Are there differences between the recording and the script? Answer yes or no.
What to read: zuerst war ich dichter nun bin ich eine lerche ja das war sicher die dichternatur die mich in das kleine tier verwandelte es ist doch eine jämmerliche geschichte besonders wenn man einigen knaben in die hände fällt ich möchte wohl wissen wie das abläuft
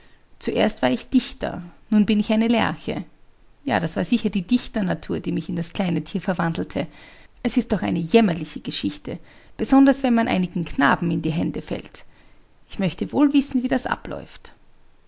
no